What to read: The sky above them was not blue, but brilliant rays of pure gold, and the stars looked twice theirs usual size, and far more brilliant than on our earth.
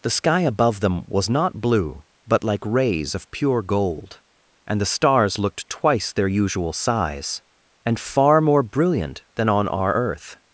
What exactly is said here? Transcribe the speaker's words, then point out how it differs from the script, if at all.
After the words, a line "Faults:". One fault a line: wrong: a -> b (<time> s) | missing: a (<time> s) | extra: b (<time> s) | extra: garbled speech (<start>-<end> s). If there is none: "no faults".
The sky above them was not blue, but like rays of pure gold, and the stars looked twice their usual size, and far more brilliant than on our earth.
Faults:
wrong: brilliant -> like (2.4 s)
wrong: theirs -> their (6.1 s)